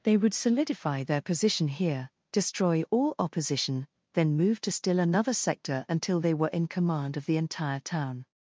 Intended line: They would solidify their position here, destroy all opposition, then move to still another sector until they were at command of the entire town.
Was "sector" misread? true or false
false